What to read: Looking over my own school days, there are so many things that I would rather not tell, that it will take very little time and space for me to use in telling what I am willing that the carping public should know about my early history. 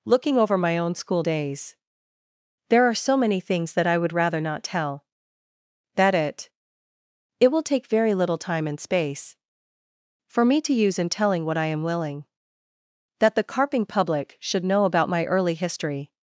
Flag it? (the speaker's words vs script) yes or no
yes